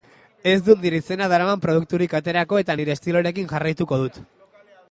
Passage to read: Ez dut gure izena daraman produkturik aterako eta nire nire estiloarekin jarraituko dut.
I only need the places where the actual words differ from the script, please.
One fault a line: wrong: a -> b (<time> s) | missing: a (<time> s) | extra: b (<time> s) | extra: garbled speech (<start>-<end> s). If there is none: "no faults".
wrong: gure -> nire (0.8 s)
missing: nire (2.9 s)